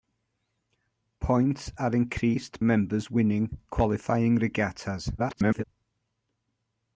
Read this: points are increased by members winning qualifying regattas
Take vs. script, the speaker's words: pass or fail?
fail